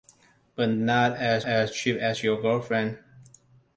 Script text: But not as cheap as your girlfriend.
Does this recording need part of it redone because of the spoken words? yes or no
yes